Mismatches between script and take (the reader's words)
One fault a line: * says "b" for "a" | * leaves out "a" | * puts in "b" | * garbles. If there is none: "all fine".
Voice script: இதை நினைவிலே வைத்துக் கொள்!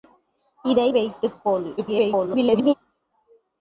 * leaves out "நினைவிலே"
* garbles